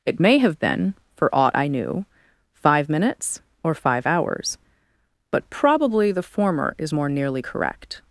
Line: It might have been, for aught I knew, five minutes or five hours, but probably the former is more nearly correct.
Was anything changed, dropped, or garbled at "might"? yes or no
yes